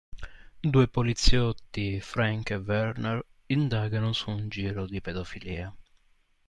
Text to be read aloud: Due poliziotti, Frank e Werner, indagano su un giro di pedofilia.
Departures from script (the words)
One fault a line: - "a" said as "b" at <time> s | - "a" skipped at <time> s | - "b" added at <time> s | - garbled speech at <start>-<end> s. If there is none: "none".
none